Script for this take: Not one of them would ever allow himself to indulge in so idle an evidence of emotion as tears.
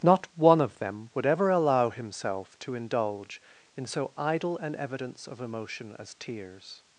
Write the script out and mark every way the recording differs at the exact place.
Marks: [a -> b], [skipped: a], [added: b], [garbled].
Not one of them would ever allow himself to indulge in so idle an evidence of emotion as tears.